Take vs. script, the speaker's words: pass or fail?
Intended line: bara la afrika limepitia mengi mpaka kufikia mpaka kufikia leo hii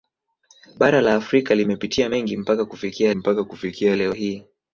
pass